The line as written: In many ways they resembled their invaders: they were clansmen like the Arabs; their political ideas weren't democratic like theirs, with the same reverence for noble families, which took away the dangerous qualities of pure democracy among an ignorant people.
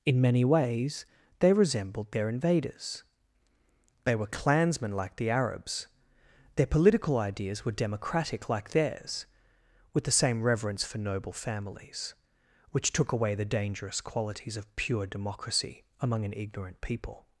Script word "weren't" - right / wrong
wrong